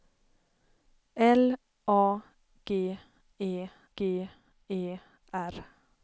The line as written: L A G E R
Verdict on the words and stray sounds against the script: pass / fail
fail